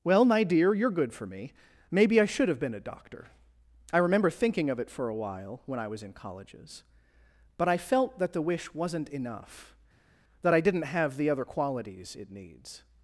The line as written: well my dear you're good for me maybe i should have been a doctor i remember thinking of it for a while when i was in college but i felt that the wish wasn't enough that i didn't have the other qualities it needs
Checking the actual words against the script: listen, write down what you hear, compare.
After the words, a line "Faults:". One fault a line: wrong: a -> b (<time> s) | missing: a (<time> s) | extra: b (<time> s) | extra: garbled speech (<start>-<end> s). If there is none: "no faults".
well my dear you're good for me maybe i should have been a doctor i remember thinking of it for a while when i was in colleges but i felt that the wish wasn't enough that i didn't have the other qualities it needs
Faults:
wrong: college -> colleges (6.1 s)